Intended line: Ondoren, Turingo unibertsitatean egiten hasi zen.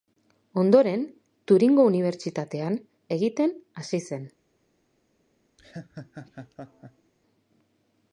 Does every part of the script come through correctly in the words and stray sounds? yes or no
no